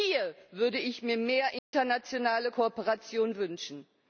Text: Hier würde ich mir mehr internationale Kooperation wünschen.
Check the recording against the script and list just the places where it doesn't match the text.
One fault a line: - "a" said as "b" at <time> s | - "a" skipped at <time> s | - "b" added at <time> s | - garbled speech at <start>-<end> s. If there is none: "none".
none